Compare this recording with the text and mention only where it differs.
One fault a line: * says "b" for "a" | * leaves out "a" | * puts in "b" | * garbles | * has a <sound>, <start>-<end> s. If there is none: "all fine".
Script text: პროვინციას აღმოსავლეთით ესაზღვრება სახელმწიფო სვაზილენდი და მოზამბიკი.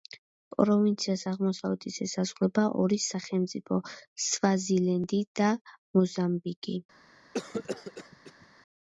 * puts in "ორი"
* has a cough, 7.3-8.5 s